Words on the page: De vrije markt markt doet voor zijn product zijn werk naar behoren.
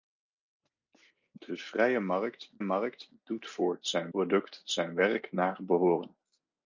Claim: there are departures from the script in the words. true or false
false